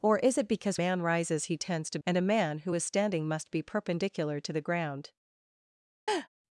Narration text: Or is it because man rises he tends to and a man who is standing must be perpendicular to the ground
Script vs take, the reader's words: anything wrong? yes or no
no